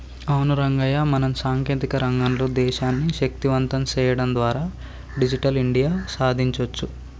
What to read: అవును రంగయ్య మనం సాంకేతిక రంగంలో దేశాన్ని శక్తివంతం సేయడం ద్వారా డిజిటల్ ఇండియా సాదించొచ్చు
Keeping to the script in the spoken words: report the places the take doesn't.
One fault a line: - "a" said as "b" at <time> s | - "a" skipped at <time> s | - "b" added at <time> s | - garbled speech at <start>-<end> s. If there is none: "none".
none